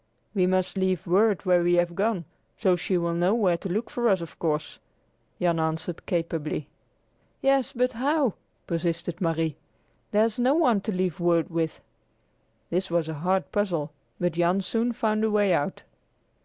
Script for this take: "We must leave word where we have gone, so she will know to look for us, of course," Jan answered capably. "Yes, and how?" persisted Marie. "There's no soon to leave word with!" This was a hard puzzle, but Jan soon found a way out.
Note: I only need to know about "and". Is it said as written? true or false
false